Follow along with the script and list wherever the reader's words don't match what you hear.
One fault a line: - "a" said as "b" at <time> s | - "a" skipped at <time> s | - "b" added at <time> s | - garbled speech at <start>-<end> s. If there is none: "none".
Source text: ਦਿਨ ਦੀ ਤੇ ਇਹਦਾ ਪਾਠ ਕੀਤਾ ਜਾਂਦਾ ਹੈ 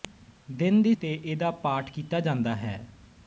none